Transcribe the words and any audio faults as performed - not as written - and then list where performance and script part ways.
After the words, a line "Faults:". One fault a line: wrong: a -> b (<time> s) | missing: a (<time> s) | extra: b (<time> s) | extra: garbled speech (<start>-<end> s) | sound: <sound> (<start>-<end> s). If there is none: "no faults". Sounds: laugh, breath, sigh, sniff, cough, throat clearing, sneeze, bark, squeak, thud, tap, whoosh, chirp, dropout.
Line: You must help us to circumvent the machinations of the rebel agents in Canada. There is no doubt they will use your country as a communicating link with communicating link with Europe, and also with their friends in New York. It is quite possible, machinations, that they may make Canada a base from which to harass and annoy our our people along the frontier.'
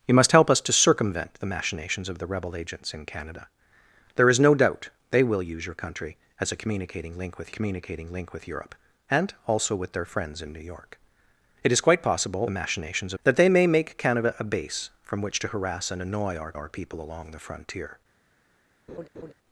You must help us to circumvent the machinations of the rebel agents in Canada. There is no doubt they will use your country as a communicating link with communicating link with Europe, and also with their friends in New York. It is quite possible, machinations, that they may make Canada a base from which to harass and annoy our our people along the frontier.'
Faults:
sound: laugh (18.9-19.3 s)